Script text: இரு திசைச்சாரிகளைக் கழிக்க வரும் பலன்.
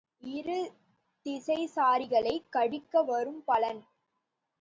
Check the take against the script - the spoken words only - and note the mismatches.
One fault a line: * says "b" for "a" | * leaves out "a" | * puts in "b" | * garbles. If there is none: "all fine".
all fine